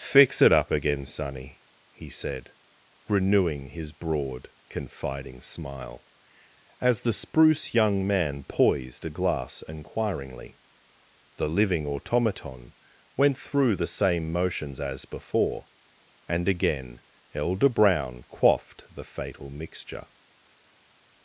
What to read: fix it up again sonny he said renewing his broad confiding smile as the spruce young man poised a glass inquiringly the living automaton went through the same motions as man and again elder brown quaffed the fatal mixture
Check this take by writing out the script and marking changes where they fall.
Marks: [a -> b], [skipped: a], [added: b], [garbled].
fix it up again sonny he said renewing his broad confiding smile as the spruce young man poised a glass inquiringly the living automaton went through the same motions as [man -> before] and again elder brown quaffed the fatal mixture